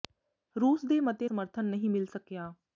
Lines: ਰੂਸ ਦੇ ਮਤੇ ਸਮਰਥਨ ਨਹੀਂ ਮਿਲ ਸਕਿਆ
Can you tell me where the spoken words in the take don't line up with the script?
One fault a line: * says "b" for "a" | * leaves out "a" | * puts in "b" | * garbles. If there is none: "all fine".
all fine